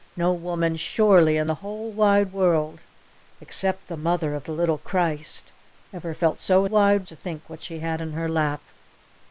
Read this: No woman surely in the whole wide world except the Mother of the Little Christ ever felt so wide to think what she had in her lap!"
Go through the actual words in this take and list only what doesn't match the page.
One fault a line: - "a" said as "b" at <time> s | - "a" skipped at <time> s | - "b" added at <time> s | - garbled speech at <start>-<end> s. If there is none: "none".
none